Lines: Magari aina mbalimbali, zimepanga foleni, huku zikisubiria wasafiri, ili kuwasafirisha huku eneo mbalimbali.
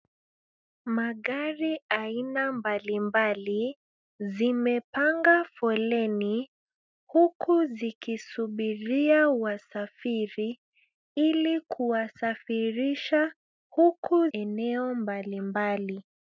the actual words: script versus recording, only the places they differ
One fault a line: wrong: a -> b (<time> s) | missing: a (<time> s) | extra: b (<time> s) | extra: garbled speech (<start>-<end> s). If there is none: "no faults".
no faults